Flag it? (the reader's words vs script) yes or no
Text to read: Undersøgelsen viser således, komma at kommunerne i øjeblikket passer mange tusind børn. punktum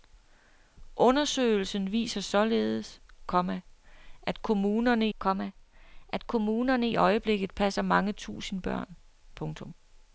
yes